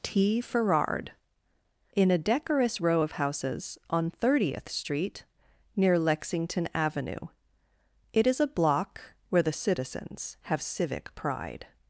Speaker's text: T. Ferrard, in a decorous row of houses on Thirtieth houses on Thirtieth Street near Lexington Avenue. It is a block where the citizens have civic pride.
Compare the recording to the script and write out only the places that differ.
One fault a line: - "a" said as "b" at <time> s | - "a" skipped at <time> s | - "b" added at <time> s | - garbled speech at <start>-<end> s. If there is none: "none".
- "houses on Thirtieth" skipped at 4.7 s